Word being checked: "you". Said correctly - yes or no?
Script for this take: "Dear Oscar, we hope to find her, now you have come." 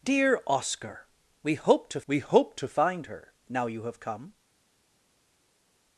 yes